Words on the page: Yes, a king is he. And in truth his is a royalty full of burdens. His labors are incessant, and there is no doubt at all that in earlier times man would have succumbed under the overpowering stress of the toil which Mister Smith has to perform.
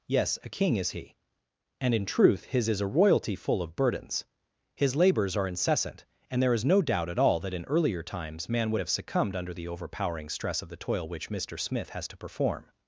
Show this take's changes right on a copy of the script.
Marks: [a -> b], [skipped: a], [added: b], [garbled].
Yes, a king is he. And in truth his is a royalty full of burdens. His labors are incessant, and there is no doubt at all that in earlier times man would have succumbed under the overpowering stress of the toil which Mister Smith has to perform.